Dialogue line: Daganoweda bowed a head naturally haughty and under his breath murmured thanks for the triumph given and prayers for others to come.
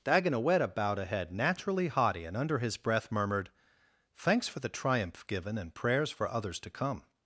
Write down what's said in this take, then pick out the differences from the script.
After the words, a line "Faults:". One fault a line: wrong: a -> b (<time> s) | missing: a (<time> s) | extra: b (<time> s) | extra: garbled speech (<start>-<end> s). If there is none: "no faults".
Daganoweda bowed a head naturally haughty and under his breath murmured thanks for the triumph given and prayers for others to come.
Faults:
no faults